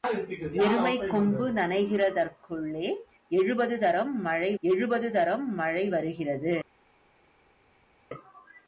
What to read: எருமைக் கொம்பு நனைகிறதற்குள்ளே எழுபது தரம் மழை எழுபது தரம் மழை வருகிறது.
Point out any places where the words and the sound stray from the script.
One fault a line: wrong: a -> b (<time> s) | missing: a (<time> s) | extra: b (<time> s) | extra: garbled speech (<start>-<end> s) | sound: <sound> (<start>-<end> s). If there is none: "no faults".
no faults